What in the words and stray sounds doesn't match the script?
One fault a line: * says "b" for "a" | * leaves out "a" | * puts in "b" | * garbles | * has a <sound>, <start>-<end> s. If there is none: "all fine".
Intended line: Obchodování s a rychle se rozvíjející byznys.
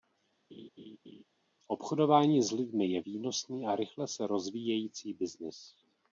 * has a laugh, 0.5-1.2 s
* puts in "lidmi je výnosný"